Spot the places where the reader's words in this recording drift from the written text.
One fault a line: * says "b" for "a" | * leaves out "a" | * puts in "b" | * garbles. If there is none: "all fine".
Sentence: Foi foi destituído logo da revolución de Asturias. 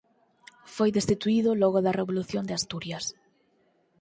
* leaves out "foi"